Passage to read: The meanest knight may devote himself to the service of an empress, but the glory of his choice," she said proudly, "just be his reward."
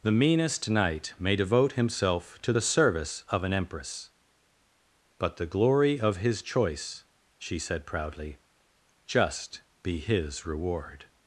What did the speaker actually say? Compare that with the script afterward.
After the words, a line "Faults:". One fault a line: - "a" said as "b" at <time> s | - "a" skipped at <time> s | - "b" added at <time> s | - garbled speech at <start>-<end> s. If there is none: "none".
The meanest knight may devote himself to the service of an empress, but the glory of his choice," she said proudly, "just be his reward."
Faults:
none